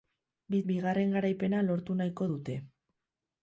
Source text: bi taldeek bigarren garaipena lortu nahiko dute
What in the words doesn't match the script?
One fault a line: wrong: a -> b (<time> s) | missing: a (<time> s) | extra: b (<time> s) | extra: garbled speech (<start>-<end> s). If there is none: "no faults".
missing: taldeek (0.6 s)